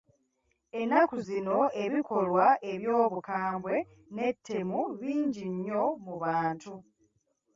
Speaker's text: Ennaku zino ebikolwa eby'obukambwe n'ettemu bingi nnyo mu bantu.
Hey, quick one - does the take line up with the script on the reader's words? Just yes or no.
yes